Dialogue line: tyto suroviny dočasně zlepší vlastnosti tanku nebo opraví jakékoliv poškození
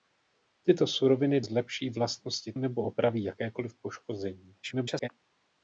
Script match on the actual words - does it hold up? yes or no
no